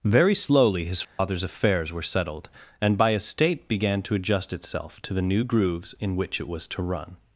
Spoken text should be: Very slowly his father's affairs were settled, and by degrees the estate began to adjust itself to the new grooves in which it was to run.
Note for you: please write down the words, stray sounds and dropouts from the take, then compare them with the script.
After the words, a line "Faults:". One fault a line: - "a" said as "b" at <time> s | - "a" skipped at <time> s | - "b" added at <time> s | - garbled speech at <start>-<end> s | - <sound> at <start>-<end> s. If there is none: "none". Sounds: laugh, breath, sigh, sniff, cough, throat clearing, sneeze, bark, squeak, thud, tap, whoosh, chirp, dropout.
Very slowly his father's affairs were settled, and by estate began to adjust itself to the new grooves in which it was to run.
Faults:
- dropout at 1.0-1.2 s
- "degrees the" skipped at 3.1 s